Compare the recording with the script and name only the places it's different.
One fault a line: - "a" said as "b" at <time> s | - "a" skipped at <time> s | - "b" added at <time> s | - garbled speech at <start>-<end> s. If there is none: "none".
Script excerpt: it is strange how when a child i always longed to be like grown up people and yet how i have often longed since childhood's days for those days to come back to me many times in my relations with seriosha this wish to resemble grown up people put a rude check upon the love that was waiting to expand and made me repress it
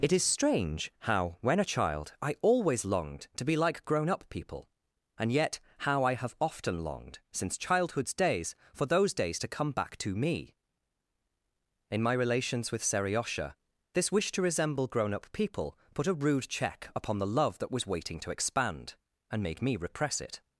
- "many times" skipped at 10.5 s